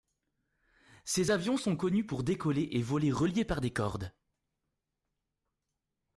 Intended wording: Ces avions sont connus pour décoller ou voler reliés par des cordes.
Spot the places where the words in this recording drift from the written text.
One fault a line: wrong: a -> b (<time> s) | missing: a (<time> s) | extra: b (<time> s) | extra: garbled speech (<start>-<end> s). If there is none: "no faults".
wrong: ou -> et (2.7 s)